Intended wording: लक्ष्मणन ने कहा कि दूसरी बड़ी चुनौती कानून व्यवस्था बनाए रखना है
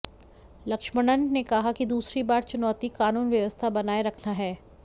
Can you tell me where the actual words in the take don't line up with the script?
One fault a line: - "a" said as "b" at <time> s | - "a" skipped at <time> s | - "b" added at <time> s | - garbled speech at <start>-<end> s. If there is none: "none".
none